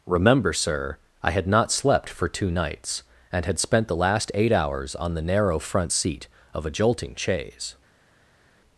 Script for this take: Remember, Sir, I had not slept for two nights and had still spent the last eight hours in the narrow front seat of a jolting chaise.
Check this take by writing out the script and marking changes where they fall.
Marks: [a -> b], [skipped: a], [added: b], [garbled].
Remember, Sir, I had not slept for two nights and had [skipped: still] spent the last eight hours [in -> on] the narrow front seat of a jolting chaise.